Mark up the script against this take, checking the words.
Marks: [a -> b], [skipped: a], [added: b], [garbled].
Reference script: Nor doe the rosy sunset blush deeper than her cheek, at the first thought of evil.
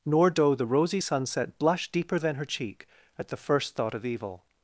Nor doe the rosy sunset blush deeper than her cheek, at the first thought of evil.